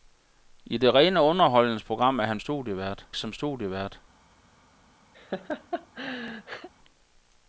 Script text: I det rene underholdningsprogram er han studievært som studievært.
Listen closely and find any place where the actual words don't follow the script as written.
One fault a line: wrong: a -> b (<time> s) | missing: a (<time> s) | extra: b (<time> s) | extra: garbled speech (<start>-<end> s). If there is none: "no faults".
no faults